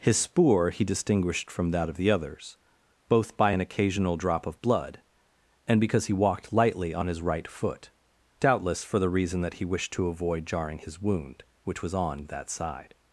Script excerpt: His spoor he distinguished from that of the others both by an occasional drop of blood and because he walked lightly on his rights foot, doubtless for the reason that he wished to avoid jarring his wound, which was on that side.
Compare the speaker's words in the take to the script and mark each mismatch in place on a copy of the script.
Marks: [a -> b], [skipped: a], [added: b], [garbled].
His spoor he distinguished from that of the others both by an occasional drop of blood and because he walked lightly on his [rights -> right] foot, doubtless for the reason that he wished to avoid jarring his wound, which was on that side.